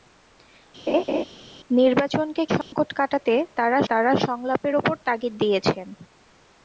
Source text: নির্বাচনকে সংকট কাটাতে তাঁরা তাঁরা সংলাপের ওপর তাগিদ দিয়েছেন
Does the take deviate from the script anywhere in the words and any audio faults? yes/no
yes